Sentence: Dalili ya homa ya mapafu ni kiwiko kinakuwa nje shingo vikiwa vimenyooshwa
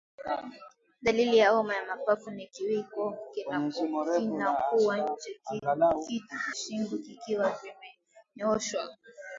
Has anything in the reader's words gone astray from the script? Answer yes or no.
no